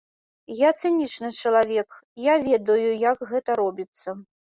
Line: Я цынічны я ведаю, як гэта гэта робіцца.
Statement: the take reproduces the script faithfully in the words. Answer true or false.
false